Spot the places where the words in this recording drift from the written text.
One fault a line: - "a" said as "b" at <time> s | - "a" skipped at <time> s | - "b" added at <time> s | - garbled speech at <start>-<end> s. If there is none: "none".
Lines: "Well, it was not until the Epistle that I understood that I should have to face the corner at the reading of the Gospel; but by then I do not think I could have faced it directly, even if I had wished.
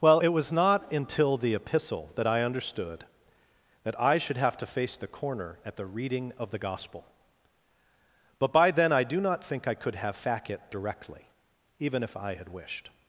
- "faced" said as "fac" at 10.2 s